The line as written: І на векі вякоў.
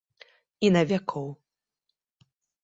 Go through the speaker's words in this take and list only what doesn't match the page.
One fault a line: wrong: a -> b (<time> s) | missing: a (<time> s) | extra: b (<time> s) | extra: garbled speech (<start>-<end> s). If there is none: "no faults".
missing: векі (0.8 s)